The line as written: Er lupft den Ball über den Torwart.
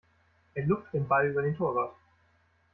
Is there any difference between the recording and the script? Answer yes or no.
no